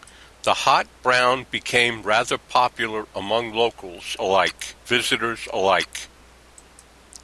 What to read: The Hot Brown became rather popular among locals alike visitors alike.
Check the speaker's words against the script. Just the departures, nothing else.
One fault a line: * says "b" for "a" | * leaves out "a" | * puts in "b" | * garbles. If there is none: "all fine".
all fine